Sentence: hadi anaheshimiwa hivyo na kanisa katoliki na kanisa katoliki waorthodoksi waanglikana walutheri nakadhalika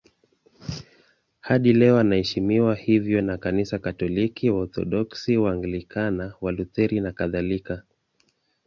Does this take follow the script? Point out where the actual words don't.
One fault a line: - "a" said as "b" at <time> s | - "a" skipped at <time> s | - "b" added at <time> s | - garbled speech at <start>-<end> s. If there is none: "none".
- "leo" added at 1.7 s
- "na kanisa katoliki" skipped at 4.5 s